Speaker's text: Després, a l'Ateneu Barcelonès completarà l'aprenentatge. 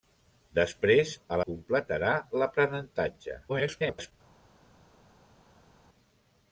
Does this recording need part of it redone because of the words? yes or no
yes